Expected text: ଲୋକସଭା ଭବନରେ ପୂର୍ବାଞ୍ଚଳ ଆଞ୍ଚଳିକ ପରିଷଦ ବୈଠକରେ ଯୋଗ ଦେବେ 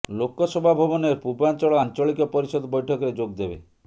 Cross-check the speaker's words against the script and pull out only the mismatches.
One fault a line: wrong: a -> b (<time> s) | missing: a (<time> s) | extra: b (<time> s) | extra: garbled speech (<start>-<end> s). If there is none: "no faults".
no faults